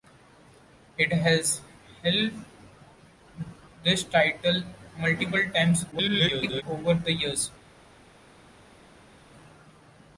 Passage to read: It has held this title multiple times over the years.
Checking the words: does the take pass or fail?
fail